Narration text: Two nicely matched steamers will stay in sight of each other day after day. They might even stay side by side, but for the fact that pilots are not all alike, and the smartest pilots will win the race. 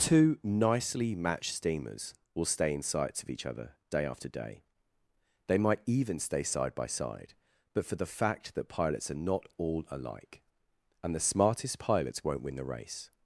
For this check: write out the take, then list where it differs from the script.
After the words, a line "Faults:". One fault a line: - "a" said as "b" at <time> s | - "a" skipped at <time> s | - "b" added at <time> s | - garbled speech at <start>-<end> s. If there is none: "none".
Two nicely matched steamers will stay in sights of each other day after day. They might even stay side by side, but for the fact that pilots are not all alike, and the smartest pilots won't win the race.
Faults:
- "sight" said as "sights" at 2.8 s
- "will" said as "won't" at 12.2 s